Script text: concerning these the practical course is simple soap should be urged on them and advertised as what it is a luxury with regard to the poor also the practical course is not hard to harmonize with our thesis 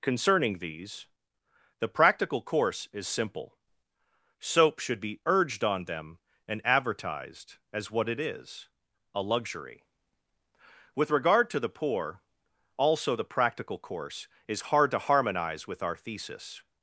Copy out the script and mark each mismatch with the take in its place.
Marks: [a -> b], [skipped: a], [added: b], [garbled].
concerning these the practical course is simple soap should be urged on them and advertised as what it is a luxury with regard to the poor also the practical course is [skipped: not] hard to harmonize with our thesis